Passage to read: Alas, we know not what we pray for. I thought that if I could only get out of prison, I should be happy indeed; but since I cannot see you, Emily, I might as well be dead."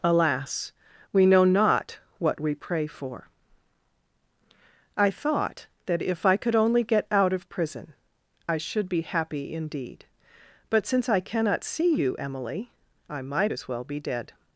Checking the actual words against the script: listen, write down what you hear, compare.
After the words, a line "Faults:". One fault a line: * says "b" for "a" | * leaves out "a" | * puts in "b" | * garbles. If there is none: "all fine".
Alas, we know not what we pray for. I thought that if I could only get out of prison, I should be happy indeed; but since I cannot see you, Emily, I might as well be dead."
Faults:
all fine